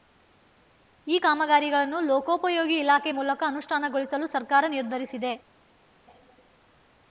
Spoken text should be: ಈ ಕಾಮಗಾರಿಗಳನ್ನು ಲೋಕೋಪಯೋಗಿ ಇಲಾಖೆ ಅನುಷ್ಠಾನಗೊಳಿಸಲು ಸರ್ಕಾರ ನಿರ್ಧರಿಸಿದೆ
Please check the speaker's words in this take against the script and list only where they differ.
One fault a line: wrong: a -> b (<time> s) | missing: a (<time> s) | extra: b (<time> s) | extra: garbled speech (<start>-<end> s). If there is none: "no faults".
extra: ಮೂಲಕ (3.1 s)